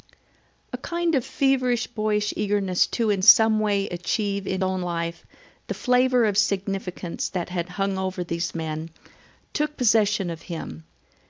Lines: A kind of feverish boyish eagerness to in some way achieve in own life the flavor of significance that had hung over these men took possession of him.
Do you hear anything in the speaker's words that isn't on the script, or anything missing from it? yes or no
no